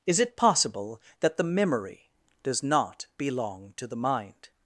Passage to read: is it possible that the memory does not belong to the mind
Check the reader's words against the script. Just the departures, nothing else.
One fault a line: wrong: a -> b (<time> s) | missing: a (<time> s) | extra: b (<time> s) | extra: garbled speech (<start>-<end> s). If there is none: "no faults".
no faults